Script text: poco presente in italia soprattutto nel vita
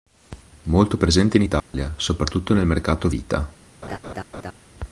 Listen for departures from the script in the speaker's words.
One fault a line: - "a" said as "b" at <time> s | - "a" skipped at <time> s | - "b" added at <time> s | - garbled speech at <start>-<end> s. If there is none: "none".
- "poco" said as "molto" at 0.6 s
- "mercato" added at 2.7 s